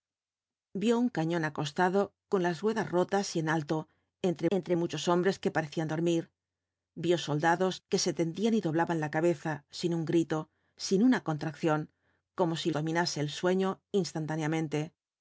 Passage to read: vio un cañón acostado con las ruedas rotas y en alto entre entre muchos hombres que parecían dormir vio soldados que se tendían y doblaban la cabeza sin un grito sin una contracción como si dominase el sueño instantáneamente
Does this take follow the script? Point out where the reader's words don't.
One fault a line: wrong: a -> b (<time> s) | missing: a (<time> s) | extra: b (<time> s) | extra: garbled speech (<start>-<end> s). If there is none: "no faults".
no faults